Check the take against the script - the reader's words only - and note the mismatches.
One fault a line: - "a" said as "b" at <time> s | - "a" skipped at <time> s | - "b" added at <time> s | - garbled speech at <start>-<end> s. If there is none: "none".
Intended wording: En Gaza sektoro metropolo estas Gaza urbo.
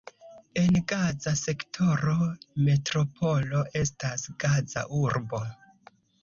none